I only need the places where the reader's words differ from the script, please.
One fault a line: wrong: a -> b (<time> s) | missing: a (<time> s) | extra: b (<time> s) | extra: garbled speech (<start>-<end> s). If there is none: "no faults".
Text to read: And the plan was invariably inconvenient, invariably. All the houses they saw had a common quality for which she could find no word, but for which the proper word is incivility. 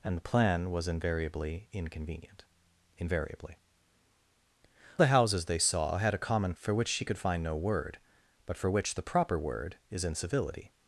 missing: All (3.6 s)
missing: quality (6.5 s)